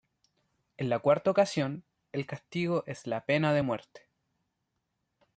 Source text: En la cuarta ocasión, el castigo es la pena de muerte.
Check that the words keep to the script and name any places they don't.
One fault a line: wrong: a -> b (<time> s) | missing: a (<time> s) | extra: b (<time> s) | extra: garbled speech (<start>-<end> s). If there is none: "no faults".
no faults